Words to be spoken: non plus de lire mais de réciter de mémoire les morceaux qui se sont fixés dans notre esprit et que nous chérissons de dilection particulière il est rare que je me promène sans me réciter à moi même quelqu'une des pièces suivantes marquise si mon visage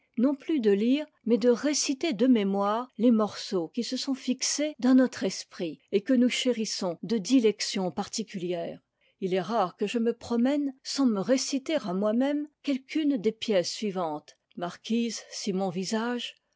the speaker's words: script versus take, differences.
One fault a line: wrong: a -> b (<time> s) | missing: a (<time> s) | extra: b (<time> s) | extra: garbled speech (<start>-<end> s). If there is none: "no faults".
no faults